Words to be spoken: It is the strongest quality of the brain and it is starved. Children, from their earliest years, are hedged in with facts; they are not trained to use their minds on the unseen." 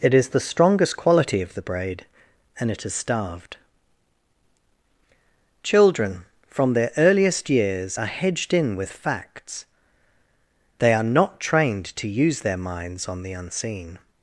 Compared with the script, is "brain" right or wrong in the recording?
wrong